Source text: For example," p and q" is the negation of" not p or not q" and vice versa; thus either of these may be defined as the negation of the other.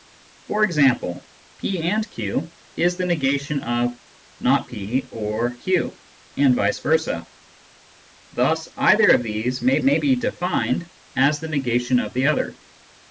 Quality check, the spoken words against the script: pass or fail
fail